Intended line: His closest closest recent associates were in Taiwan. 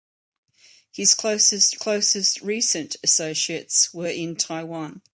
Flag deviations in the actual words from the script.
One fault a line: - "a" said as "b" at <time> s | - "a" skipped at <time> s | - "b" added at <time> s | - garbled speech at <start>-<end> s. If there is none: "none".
none